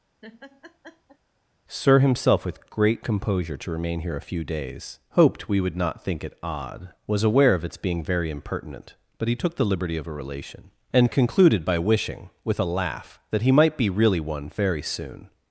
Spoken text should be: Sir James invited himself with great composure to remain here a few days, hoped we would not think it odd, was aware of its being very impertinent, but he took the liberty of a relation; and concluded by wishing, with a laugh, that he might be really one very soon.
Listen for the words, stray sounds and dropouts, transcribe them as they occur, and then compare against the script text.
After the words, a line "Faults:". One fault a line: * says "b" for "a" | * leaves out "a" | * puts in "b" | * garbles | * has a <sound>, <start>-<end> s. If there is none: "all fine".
Sir himself with great composure to remain here a few days, hoped we would not think it odd, was aware of its being very impertinent, but he took the liberty of a relation; and concluded by wishing, with a laugh, that he might be really one very soon.
Faults:
* has a laugh, 0.2-1.2 s
* leaves out "James invited"